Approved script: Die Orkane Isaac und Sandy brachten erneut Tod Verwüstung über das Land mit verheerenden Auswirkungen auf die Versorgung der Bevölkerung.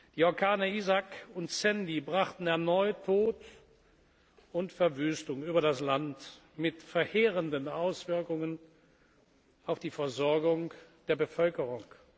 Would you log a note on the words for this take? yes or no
yes